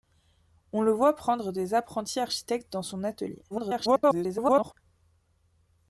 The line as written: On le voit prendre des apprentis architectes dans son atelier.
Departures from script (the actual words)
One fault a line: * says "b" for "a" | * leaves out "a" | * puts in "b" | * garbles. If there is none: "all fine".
* garbles